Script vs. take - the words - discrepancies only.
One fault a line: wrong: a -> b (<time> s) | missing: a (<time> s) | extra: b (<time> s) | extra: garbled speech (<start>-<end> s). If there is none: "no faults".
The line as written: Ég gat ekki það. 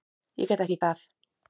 no faults